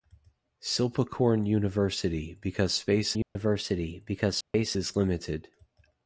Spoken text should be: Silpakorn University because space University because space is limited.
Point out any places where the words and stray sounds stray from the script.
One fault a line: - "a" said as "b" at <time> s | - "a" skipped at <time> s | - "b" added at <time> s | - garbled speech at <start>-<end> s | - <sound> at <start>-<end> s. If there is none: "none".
- dropout at 3.2-3.4 s
- dropout at 4.4-4.5 s